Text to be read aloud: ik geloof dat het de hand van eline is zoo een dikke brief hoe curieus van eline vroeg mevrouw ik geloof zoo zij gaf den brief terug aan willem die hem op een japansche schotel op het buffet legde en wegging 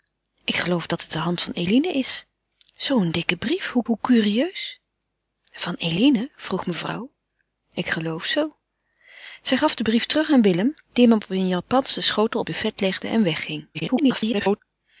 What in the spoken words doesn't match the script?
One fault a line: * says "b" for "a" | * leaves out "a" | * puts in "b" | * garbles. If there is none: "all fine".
* puts in "hoe"
* leaves out "het"
* garbles